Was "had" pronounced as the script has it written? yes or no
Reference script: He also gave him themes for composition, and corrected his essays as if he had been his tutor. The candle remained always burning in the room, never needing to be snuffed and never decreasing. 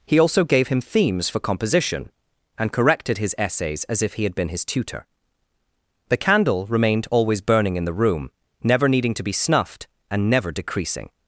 yes